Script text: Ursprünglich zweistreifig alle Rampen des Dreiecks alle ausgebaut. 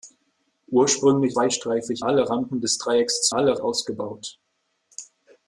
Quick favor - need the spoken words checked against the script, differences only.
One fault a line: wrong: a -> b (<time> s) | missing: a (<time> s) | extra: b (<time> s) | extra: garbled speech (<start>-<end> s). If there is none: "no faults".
no faults